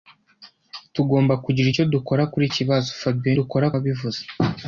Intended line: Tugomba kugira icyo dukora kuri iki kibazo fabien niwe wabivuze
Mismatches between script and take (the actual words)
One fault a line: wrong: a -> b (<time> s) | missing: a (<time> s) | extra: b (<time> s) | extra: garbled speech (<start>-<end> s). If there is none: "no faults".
missing: iki (2.4 s)
wrong: niwe -> dukora (3.4 s)